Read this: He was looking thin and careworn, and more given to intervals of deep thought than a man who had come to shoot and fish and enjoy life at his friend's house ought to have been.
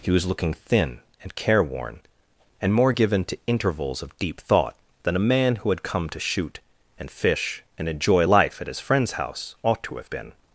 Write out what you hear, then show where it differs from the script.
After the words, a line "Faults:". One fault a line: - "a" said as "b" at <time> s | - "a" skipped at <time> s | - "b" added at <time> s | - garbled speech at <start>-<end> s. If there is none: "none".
He was looking thin and careworn, and more given to intervals of deep thought than a man who had come to shoot and fish and enjoy life at his friend's house ought to have been.
Faults:
none